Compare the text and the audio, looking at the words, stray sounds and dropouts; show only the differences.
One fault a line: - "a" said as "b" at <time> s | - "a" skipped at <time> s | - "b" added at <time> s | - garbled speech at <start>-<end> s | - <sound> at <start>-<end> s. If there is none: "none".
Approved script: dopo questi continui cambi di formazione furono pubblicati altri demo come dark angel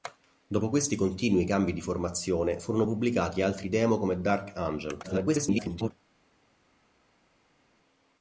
- garbled speech at 5.0-5.9 s